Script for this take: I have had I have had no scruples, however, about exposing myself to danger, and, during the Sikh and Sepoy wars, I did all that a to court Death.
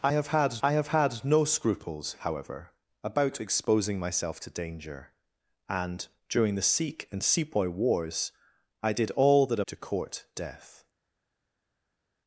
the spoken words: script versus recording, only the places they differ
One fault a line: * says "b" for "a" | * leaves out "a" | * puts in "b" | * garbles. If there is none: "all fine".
all fine